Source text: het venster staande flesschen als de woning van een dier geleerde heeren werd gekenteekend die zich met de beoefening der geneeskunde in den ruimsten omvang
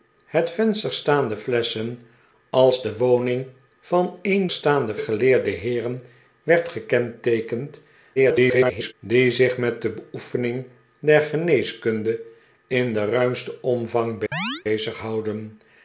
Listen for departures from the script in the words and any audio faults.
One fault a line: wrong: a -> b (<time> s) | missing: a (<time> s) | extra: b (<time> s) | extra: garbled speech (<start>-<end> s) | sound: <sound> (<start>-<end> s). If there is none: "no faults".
wrong: dier -> staande (4.5 s)
extra: garbled speech (8.2-8.9 s)
sound: chirp (14.3-14.6 s)